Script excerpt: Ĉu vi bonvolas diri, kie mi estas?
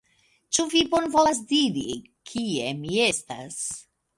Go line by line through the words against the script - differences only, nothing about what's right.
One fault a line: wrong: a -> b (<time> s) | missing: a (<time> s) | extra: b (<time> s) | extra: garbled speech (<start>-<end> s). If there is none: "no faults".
no faults